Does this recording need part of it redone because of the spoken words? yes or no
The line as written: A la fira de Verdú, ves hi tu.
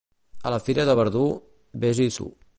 no